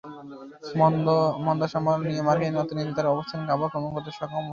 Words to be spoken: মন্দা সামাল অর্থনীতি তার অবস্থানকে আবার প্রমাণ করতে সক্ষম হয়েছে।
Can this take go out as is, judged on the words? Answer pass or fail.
fail